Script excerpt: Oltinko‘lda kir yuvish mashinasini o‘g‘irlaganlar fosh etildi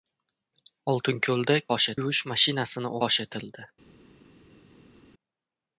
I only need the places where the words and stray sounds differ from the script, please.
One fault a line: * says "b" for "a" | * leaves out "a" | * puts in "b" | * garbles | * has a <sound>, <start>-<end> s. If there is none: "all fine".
* says "fosh" for "kir"
* leaves out "o‘g‘irlaganlar"